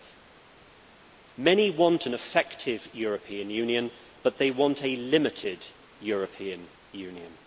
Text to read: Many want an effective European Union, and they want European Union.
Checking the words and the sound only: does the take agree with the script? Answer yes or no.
no